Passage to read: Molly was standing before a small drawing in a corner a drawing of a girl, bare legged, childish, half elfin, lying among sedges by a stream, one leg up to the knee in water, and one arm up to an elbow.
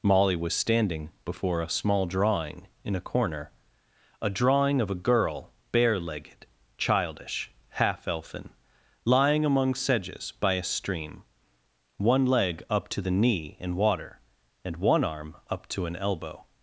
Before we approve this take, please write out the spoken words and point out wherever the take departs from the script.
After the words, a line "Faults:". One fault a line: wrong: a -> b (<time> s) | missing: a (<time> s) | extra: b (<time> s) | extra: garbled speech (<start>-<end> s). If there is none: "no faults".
Molly was standing before a small drawing in a corner a drawing of a girl, bare legged, childish, half elfin, lying among sedges by a stream, one leg up to the knee in water, and one arm up to an elbow.
Faults:
no faults